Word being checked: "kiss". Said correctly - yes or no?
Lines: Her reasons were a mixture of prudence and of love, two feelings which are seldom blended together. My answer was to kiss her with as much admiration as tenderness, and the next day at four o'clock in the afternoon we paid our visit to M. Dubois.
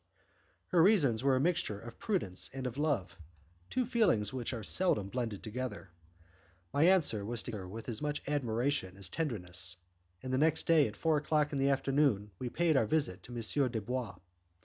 no